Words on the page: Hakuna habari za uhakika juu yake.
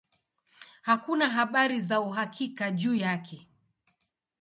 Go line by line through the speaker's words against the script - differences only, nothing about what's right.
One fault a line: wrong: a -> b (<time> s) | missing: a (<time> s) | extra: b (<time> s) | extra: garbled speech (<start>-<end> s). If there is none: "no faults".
no faults